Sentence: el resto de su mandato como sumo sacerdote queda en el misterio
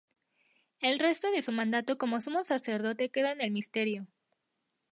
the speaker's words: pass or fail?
pass